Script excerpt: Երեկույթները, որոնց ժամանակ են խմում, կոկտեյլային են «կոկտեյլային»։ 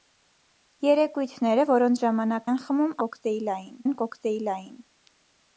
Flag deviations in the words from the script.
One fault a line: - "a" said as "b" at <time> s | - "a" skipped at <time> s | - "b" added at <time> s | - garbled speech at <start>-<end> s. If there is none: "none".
none